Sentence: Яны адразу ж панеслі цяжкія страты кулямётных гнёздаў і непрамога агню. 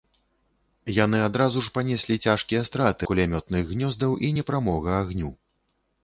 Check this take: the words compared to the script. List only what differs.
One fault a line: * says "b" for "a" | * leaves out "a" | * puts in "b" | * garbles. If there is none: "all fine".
all fine